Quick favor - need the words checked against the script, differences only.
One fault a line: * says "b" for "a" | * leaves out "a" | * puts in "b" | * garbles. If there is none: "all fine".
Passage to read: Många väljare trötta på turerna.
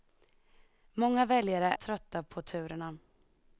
all fine